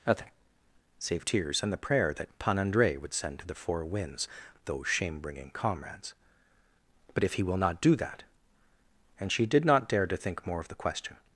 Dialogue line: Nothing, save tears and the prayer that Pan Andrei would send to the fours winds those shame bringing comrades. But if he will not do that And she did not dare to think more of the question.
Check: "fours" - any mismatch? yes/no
yes